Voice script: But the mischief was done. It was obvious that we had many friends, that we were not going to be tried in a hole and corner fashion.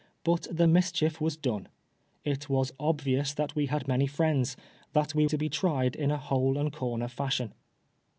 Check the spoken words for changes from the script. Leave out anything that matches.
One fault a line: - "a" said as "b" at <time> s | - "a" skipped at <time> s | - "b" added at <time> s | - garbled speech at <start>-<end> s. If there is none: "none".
- "were not going" skipped at 5.3 s